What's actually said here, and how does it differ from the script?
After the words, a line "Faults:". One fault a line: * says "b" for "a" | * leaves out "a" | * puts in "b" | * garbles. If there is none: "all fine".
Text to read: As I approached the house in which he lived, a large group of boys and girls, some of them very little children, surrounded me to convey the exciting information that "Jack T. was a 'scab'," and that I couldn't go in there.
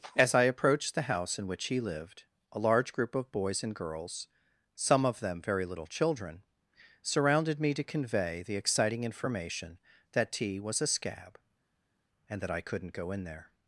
As I approached the house in which he lived, a large group of boys and girls, some of them very little children, surrounded me to convey the exciting information that "T. was a 'scab'," and that I couldn't go in there.
Faults:
* leaves out "Jack"